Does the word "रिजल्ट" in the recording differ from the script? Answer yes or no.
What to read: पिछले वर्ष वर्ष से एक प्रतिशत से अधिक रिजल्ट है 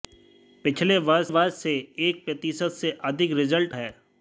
no